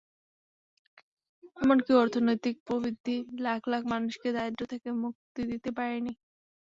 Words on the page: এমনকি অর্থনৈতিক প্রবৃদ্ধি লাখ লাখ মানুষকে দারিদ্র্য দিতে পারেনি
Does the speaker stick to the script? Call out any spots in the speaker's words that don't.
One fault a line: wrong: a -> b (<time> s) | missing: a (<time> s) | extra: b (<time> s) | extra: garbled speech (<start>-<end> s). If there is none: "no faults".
extra: থেকে মুক্তি (4.7 s)